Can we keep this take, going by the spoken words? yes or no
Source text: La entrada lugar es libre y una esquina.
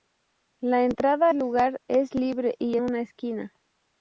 yes